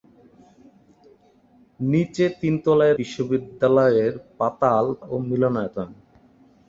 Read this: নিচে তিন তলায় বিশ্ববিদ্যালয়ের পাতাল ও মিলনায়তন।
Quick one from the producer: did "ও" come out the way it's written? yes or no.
yes